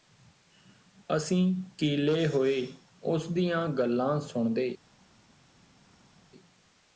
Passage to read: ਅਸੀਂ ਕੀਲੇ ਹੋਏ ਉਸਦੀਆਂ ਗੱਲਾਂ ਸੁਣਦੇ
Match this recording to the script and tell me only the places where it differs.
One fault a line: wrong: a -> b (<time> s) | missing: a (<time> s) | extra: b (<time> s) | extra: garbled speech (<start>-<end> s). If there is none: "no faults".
no faults